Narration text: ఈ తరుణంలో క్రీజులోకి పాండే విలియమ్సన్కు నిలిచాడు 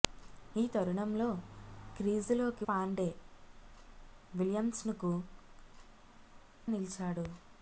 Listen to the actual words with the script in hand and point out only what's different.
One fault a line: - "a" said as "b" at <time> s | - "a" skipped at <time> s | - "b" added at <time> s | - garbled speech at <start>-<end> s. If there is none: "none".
none